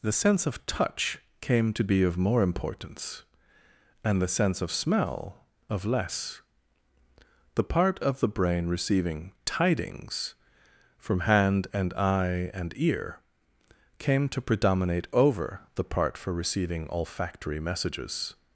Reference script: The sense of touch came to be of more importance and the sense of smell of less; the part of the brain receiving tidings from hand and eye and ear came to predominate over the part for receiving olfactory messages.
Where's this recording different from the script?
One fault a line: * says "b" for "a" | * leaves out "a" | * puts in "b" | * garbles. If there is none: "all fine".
all fine